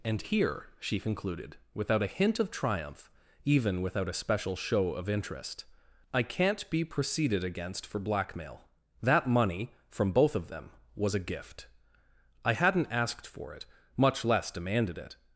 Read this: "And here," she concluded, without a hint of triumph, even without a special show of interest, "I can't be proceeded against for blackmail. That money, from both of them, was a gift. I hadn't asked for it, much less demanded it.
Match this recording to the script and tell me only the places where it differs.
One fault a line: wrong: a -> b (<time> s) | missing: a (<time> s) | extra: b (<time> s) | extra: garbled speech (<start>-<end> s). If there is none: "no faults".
no faults